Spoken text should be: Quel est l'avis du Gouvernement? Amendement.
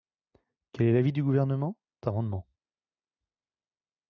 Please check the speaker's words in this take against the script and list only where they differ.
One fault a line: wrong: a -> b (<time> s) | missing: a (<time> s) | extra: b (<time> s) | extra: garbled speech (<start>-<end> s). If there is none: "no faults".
no faults